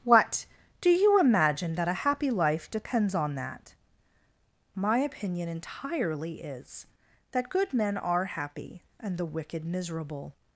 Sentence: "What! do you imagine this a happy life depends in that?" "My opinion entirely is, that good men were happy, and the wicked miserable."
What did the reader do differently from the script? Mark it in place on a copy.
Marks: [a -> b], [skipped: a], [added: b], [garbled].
"What! do you imagine [this -> that] a happy life depends [in -> on] that?" "My opinion entirely is, that good men [were -> are] happy, and the wicked miserable."